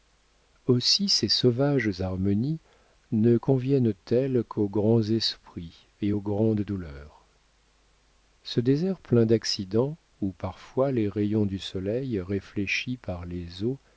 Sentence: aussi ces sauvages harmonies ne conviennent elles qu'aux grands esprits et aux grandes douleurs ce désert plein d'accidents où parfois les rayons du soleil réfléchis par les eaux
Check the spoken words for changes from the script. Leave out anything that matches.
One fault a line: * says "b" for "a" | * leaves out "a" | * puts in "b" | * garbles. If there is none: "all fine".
all fine